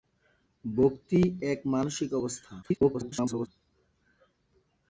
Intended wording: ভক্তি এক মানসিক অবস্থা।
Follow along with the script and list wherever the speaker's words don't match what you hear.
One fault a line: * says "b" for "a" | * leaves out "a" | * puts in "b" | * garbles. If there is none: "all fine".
* garbles